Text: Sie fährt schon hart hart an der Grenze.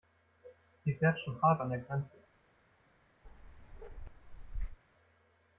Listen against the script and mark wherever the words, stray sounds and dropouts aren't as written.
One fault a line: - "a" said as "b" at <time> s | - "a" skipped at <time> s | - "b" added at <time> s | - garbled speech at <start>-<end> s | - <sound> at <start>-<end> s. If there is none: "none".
- "hart" skipped at 1.6 s
- bark at 3.2-4.8 s